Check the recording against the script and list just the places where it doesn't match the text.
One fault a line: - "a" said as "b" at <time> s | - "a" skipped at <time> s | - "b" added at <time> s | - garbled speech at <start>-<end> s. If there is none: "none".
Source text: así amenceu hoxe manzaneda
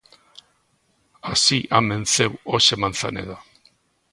none